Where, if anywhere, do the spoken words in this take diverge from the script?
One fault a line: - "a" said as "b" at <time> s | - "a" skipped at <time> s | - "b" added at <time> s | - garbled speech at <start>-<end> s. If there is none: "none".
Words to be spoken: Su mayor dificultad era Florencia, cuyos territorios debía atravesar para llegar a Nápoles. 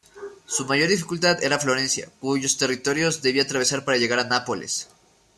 none